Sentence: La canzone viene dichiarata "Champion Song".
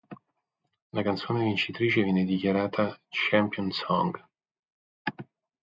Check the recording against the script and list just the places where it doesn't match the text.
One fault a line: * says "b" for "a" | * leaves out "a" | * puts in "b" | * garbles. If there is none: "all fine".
* puts in "vincitrice"